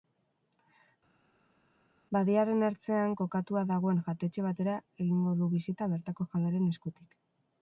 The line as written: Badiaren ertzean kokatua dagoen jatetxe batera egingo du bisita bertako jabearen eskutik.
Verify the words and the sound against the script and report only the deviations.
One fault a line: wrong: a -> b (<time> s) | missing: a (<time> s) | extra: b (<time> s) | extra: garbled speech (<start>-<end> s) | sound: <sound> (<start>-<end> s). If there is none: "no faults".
no faults